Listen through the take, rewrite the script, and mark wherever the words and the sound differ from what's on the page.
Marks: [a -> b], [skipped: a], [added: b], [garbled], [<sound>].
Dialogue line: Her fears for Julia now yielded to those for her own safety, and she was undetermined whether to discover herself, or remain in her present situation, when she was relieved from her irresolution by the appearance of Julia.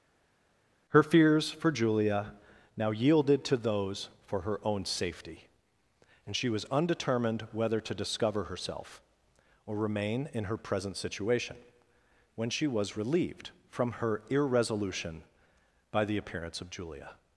Her fears for Julia now yielded to those for her own safety, and she was undetermined whether to discover herself, or remain in her present situation, when she was relieved from her irresolution by the appearance of Julia.